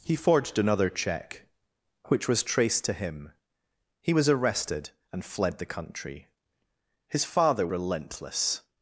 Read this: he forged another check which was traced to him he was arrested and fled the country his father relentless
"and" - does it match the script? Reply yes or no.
yes